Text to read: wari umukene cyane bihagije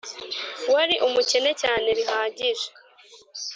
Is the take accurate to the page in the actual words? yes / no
yes